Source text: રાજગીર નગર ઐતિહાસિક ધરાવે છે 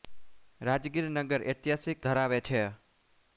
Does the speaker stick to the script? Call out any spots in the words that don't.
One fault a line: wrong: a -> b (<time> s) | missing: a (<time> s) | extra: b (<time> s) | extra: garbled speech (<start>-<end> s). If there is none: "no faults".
no faults